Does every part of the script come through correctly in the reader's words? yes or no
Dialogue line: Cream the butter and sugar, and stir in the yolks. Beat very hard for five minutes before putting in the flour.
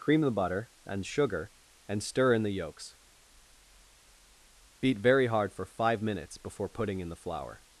yes